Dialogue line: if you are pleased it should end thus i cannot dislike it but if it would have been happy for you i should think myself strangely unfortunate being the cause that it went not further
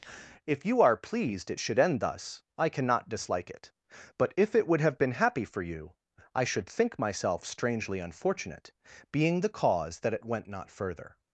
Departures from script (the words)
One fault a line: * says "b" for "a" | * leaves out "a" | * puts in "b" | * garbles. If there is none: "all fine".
all fine